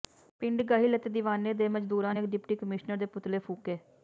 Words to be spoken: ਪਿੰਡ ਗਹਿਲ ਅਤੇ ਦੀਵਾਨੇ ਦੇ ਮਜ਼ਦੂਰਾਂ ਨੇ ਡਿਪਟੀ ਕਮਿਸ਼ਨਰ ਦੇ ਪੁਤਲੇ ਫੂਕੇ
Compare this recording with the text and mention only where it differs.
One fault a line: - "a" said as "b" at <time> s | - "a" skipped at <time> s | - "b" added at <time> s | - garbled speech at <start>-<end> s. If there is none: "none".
none